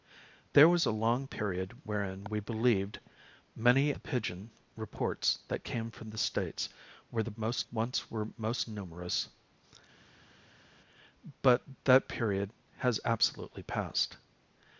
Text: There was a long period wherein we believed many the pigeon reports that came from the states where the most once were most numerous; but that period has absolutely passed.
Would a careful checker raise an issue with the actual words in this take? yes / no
no